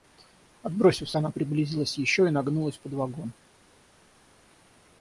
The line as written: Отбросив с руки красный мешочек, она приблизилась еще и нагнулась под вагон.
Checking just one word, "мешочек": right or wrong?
wrong